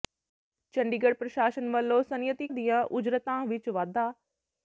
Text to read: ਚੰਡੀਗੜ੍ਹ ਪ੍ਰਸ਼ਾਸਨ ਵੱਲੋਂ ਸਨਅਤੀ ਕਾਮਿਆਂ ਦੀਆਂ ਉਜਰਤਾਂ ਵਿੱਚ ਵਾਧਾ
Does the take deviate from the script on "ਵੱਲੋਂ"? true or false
false